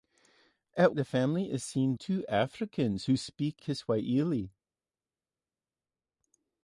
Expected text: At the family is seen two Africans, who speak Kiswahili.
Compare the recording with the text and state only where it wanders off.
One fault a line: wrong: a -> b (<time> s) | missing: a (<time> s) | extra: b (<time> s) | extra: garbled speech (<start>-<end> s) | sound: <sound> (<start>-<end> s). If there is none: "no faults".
no faults